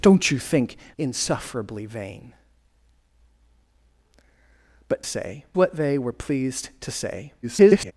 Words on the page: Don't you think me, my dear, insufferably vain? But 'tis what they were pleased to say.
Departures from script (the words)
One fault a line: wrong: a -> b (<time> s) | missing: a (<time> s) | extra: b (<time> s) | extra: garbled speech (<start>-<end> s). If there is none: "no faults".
missing: me my dear (0.8 s)
wrong: tis -> say (5.0 s)
extra: garbled speech (7.4-7.9 s)